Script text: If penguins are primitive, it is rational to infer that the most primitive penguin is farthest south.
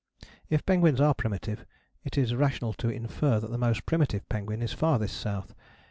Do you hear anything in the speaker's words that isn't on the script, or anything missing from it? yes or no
no